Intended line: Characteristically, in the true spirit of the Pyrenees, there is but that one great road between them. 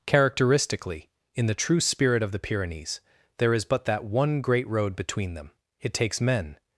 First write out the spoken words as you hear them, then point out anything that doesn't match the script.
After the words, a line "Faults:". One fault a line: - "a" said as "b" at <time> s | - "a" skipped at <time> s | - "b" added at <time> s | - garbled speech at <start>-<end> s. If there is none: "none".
Characteristically, in the true spirit of the Pyrenees, there is but that one great road between them. It takes men
Faults:
- "It takes men" added at 5.8 s